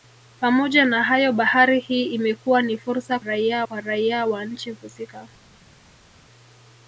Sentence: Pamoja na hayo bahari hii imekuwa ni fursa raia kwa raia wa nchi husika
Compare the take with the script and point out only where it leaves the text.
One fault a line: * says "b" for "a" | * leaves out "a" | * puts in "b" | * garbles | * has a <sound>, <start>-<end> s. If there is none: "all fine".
all fine